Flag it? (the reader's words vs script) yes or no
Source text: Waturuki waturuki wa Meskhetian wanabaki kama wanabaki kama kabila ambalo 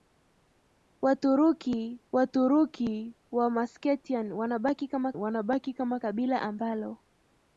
no